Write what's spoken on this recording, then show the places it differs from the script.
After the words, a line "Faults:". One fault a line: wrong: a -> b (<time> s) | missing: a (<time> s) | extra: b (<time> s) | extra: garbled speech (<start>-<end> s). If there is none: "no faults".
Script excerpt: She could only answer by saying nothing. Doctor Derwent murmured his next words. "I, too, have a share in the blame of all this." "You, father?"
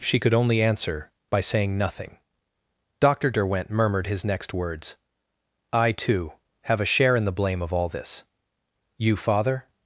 She could only answer by saying nothing. Doctor Derwent murmured his next words. "I, too, have a share in the blame of all this." "You, father?"
Faults:
no faults